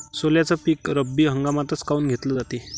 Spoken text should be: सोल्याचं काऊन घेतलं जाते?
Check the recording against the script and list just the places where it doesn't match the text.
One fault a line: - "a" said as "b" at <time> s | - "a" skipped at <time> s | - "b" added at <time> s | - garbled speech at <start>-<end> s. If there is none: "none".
- "पीक रब्बी हंगामातच" added at 0.6 s